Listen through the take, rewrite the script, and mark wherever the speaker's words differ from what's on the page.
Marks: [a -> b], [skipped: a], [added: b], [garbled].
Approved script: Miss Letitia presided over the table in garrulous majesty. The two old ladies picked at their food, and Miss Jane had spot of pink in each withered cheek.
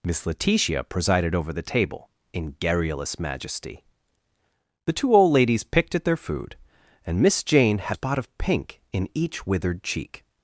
Miss Letitia presided over the table in garrulous majesty. The two old ladies picked at their food, and Miss Jane had spot of pink in each withered cheek.